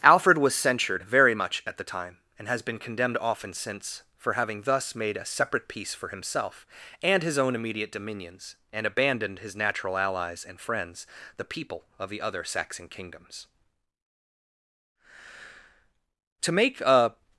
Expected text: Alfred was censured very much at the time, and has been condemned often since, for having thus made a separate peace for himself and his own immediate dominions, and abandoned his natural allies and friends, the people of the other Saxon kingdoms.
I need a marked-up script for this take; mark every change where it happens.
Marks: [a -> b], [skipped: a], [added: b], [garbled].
Alfred was censured very much at the time, and has been condemned often since, for having thus made a separate peace for himself and his own immediate dominions, and abandoned his natural allies and friends, the people of the other Saxon kingdoms. [added: To make a]